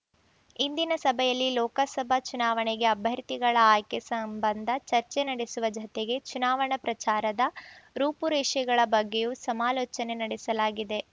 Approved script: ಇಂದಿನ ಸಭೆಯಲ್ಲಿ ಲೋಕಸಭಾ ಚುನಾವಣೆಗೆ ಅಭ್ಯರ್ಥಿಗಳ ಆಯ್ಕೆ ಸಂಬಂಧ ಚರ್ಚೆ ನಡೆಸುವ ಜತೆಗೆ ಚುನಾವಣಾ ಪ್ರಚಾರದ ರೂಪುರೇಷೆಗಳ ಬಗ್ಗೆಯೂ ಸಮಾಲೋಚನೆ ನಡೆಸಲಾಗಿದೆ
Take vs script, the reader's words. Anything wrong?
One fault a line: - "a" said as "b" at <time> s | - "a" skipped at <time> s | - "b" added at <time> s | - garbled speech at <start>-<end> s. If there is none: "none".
none